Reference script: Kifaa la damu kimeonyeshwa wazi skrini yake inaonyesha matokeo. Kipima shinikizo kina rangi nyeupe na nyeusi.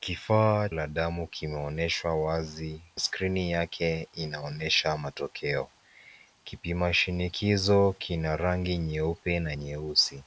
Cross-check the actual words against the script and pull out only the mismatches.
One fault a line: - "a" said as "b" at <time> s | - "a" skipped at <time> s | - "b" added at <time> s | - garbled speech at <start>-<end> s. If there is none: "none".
none